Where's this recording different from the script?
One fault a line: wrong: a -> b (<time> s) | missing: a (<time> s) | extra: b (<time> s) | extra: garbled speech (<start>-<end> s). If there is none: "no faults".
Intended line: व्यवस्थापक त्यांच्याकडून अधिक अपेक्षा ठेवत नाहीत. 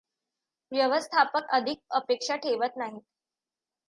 missing: त्यांच्याकडून (1.5 s)